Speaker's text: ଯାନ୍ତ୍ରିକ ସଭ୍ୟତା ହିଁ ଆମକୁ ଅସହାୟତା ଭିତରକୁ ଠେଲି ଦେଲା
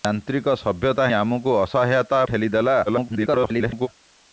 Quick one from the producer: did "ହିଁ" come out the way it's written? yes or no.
no